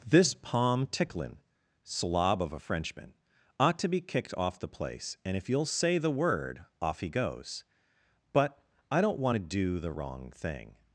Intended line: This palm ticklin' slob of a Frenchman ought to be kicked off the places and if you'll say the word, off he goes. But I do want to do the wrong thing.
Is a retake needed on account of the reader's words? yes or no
yes